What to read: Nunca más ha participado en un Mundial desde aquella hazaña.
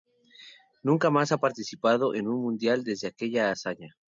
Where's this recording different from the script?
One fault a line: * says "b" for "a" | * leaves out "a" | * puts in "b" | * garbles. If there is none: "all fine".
all fine